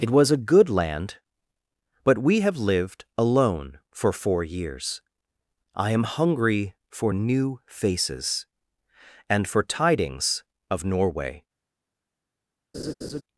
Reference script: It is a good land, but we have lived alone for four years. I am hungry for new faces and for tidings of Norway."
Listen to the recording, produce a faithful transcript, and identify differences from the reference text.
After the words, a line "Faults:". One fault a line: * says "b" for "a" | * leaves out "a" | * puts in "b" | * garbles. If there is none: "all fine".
It was a good land, but we have lived alone for four years. I am hungry for new faces and for tidings of Norway."
Faults:
* says "was" for "is"